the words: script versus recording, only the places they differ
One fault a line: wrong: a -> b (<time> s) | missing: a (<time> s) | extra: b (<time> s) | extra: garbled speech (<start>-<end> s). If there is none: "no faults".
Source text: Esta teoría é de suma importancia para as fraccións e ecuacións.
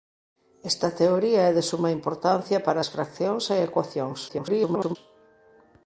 extra: garbled speech (4.3-5.0 s)